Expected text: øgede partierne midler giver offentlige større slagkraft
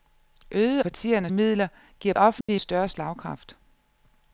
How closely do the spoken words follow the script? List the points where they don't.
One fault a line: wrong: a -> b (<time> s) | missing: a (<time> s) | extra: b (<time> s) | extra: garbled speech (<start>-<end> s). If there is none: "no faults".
no faults